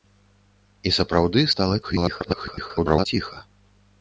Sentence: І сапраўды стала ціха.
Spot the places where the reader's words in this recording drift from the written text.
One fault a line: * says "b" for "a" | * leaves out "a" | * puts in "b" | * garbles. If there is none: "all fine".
* garbles